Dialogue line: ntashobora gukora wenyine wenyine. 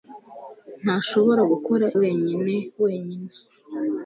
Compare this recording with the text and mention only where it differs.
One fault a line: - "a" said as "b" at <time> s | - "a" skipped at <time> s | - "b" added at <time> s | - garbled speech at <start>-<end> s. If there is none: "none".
none